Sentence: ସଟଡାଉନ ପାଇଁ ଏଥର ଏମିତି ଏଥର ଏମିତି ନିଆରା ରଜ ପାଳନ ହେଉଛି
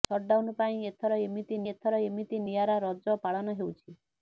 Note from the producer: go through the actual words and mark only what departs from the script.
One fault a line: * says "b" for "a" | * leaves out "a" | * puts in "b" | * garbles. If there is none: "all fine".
all fine